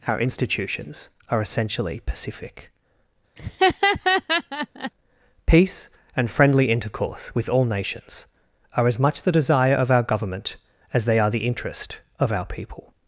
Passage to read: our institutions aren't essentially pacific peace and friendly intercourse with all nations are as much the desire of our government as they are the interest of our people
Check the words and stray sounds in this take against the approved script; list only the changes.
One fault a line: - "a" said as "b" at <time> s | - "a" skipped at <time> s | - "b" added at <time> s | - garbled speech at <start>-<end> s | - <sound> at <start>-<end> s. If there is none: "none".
- "aren't" said as "are" at 1.3 s
- laugh at 3.4-4.9 s